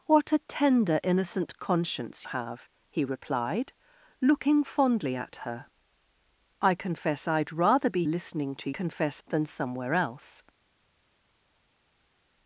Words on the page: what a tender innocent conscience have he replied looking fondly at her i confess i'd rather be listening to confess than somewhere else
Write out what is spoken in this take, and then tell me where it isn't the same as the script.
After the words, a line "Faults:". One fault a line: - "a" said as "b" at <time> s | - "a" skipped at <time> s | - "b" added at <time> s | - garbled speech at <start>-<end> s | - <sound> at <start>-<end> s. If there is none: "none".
what a tender innocent conscience have he replied looking fondly at her i confess i'd rather be listening to confess than somewhere else
Faults:
none